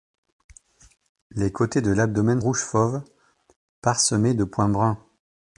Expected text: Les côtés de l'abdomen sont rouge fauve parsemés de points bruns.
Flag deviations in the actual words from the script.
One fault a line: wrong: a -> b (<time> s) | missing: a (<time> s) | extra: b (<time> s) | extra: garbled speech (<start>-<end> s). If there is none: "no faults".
missing: sont (2.4 s)